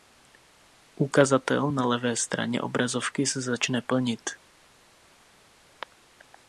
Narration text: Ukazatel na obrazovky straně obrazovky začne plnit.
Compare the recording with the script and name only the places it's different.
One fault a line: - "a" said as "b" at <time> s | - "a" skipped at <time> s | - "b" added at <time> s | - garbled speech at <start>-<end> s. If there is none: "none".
- "obrazovky" said as "levé" at 1.9 s
- "se" added at 3.3 s